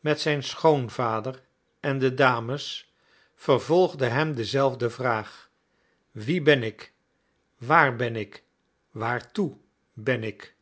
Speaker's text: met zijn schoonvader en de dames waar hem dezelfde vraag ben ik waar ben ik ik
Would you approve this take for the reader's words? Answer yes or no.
no